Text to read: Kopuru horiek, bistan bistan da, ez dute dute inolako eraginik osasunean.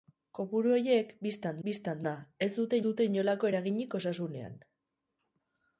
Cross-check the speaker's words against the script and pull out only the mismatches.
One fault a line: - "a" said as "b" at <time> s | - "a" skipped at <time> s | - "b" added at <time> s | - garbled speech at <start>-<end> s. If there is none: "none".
none